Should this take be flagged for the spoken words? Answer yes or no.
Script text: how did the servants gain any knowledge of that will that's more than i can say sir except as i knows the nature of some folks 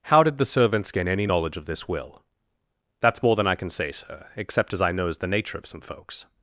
yes